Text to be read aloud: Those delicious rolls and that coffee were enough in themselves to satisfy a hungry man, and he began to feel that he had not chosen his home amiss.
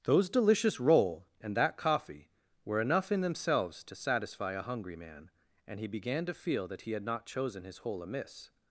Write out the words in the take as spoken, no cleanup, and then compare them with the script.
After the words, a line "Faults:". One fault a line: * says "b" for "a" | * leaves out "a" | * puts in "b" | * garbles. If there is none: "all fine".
Those delicious roll and that coffee were enough in themselves to satisfy a hungry man, and he began to feel that he had not chosen his hole amiss.
Faults:
* says "roll" for "rolls"
* says "hole" for "home"